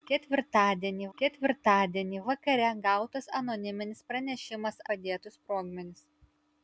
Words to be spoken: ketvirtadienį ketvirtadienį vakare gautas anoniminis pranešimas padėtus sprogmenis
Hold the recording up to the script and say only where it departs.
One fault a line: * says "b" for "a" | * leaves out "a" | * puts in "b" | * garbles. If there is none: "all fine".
all fine